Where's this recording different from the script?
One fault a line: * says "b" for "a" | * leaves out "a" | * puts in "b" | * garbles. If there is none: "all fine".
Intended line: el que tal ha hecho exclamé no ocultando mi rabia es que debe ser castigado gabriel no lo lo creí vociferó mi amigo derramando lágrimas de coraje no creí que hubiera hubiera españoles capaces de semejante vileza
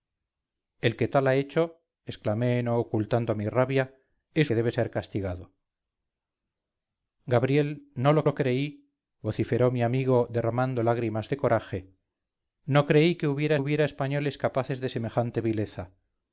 all fine